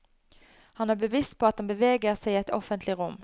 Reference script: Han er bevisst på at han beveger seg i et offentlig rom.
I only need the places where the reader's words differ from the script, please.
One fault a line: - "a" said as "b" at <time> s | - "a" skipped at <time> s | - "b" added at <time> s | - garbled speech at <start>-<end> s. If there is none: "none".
none